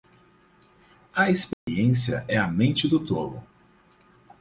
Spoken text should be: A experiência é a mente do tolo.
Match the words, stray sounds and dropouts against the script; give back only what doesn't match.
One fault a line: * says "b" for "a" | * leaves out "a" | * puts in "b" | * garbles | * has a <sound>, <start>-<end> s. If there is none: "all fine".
* has a dropout, 1.5-1.7 s